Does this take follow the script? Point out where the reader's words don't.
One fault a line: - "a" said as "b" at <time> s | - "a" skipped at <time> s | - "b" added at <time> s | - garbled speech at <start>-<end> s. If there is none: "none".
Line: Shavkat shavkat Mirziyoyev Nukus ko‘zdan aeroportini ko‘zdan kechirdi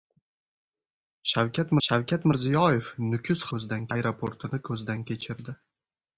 none